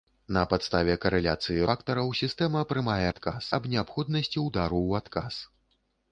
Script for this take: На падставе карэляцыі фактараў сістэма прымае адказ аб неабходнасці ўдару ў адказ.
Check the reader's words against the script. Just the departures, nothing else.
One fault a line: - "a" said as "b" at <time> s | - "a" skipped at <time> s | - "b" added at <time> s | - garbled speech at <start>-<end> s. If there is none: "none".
none